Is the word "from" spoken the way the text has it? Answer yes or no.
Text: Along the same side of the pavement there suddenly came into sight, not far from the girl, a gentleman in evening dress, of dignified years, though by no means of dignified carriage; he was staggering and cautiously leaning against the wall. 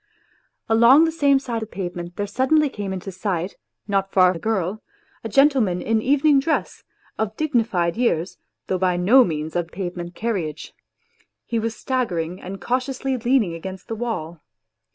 no